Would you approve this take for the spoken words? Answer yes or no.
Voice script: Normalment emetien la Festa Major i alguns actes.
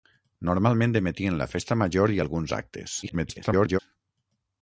no